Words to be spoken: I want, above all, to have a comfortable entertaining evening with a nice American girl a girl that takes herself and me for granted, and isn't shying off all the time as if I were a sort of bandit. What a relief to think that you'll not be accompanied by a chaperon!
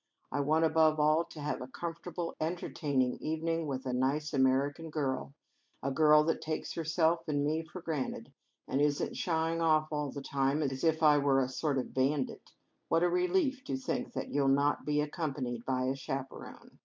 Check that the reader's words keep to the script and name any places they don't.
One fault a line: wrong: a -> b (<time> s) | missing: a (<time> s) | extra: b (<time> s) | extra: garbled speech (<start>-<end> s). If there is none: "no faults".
no faults